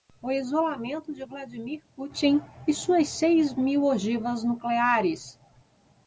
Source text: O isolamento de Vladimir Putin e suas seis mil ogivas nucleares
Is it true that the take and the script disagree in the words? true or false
false